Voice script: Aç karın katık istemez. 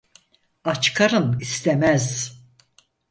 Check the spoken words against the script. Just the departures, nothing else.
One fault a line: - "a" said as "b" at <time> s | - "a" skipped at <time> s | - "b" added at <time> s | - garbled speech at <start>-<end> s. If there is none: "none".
- "katık" skipped at 1.4 s